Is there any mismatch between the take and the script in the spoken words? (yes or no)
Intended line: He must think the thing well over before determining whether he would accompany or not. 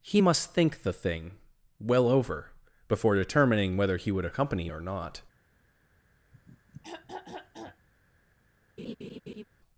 no